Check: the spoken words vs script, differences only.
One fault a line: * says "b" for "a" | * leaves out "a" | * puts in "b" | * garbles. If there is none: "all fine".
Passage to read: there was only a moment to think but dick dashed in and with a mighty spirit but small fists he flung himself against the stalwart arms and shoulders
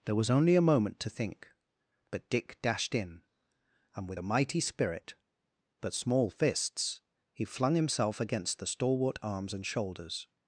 all fine